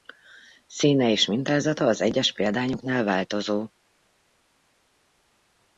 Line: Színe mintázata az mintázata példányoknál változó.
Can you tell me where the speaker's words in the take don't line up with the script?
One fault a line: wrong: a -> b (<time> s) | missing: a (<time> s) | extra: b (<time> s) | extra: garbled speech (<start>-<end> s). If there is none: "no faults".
extra: és (1.1 s)
wrong: mintázata -> egyes (2.0 s)